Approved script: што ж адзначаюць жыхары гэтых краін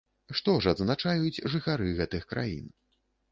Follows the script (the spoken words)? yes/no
yes